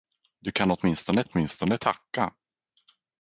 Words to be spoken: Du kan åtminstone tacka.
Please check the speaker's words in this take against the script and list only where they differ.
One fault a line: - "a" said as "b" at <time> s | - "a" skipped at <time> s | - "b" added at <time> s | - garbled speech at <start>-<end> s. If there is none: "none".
- "åtminstone" added at 1.2 s